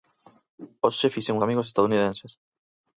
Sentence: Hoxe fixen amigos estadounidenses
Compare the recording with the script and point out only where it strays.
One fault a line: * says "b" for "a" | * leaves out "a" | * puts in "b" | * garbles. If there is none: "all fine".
all fine